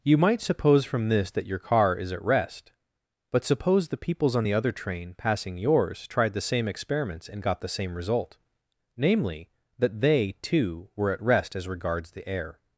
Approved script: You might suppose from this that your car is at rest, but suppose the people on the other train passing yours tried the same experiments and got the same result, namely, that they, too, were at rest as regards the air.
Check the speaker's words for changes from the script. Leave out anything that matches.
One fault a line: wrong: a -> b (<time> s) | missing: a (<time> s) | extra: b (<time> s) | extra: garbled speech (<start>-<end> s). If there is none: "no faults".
wrong: people -> peoples (4.0 s)